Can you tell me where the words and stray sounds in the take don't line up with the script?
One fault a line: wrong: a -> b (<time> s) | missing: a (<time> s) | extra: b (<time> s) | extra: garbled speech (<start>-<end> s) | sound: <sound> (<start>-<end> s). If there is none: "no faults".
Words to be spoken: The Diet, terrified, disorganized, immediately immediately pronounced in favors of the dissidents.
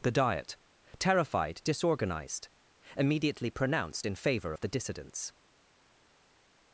missing: immediately (3.5 s)
wrong: favors -> favor (4.2 s)